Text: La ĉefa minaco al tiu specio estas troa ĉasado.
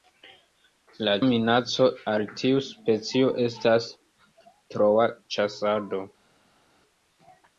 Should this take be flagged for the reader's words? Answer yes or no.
yes